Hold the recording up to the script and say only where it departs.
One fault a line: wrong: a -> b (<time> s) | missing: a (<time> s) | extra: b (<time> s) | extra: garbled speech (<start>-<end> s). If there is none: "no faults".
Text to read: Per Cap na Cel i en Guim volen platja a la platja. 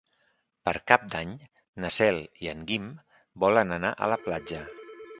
extra: d'Any (1.1 s)
wrong: platja -> anar (3.8 s)